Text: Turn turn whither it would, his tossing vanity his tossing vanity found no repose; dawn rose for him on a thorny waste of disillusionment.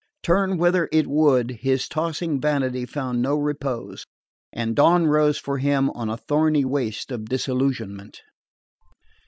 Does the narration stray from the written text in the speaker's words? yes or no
yes